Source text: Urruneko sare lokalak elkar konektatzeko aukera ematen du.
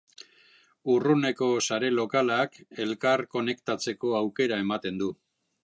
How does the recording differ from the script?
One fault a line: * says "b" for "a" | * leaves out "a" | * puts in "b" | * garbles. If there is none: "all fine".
all fine